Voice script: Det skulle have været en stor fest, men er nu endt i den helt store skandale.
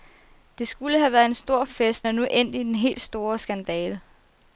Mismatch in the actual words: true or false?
true